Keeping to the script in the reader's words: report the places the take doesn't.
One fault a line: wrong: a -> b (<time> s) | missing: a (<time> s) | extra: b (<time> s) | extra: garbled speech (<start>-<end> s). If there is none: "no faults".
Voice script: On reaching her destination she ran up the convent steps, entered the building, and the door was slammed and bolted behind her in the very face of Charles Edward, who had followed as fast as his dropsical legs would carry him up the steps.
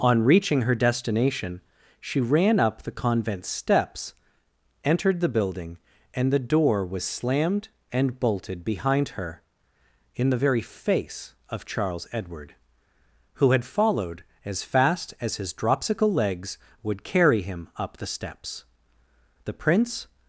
extra: The Prince (19.4 s)